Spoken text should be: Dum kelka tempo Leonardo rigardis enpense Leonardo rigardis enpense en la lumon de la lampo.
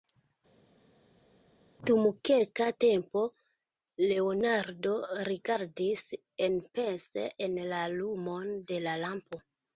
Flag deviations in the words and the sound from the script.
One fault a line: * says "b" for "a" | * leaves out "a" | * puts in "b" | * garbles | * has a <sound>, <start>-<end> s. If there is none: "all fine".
* leaves out "Leonardo rigardis enpense"